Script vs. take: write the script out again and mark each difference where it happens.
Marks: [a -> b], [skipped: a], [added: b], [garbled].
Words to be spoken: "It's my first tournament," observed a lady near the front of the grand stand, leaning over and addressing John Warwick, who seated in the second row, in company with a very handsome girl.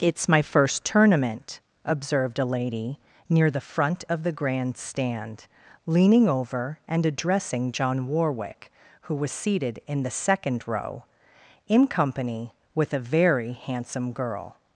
"It's my first tournament," observed a lady near the front of the grand stand, leaning over and addressing John Warwick, who [added: was] seated in the second row, in company with a very handsome girl.